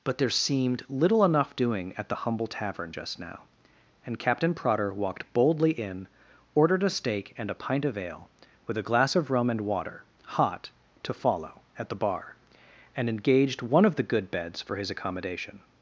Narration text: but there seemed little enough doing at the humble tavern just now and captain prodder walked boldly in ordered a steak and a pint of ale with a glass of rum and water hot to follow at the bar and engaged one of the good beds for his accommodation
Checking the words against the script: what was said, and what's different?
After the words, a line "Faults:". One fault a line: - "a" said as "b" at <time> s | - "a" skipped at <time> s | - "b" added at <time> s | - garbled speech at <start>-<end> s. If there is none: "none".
but there seemed little enough doing at the humble tavern just now and captain prodder walked boldly in ordered a steak and a pint of ale with a glass of rum and water hot to follow at the bar and engaged one of the good beds for his accommodation
Faults:
none